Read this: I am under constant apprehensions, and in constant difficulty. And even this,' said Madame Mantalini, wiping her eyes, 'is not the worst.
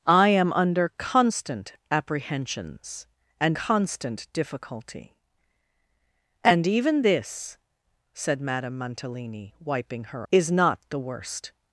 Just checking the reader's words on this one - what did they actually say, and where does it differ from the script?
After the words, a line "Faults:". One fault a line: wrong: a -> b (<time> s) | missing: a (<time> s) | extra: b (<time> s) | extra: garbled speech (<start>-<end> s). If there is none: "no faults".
I am under constant apprehensions, and constant difficulty. And even this,' said Madame Mantalini, wiping her 'is not the worst.
Faults:
missing: in (3.6 s)
missing: eyes (10.3 s)